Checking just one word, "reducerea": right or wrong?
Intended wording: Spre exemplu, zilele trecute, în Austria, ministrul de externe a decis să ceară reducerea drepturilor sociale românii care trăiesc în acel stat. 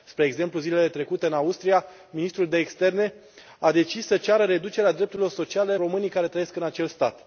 right